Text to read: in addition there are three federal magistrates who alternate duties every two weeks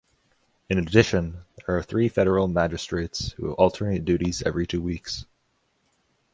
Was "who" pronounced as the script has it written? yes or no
yes